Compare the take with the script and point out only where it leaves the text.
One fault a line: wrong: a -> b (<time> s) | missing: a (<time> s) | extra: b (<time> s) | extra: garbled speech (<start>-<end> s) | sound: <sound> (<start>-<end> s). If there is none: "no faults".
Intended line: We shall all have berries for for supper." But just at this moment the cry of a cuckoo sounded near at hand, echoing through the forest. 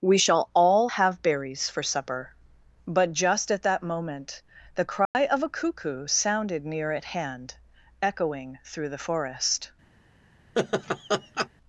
missing: for (1.8 s)
wrong: this -> that (3.6 s)
sound: dropout (5.1-5.1 s)
sound: laugh (10.6-11.5 s)